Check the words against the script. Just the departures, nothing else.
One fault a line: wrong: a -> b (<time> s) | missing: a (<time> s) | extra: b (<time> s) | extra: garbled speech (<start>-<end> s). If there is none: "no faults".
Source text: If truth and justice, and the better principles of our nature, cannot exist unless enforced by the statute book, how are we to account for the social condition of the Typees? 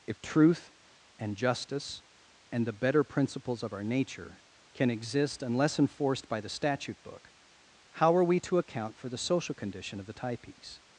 wrong: cannot -> can (4.7 s)